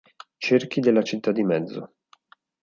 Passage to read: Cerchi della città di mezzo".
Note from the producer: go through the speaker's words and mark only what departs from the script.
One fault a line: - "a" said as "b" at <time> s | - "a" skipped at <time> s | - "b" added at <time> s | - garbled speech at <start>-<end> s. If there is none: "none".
none